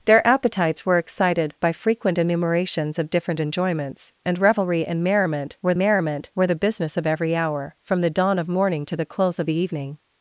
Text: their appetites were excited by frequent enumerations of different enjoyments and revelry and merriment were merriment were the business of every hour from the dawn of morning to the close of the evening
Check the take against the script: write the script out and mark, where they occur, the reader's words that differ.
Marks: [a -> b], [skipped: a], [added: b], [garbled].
their appetites were excited by frequent enumerations of different enjoyments and revelry and merriment were merriment were the business of every hour from the dawn of morning to the close of the evening